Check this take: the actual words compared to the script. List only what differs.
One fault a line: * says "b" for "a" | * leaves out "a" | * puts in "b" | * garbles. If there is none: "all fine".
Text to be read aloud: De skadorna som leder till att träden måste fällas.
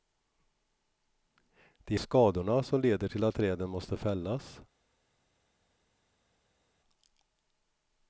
all fine